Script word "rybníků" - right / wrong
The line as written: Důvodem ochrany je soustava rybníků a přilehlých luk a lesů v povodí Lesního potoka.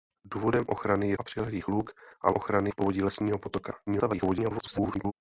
wrong